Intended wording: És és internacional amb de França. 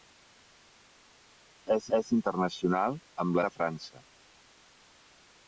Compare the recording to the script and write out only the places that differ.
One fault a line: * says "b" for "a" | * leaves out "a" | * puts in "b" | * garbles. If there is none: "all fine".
all fine